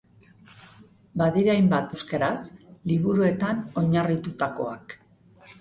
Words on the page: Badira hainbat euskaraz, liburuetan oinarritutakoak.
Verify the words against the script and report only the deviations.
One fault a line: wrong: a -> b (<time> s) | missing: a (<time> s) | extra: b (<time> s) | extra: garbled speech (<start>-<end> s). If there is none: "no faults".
no faults